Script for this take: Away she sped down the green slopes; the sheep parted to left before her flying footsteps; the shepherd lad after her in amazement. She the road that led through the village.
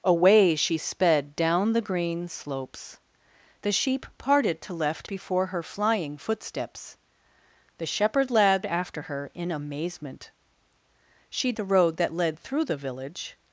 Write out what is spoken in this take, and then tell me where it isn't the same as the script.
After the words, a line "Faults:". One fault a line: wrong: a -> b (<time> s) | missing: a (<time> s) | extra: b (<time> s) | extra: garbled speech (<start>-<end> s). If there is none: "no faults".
Away she sped down the green slopes; the sheep parted to left before her flying footsteps; the shepherd lad after her in amazement. She the road that led through the village.
Faults:
no faults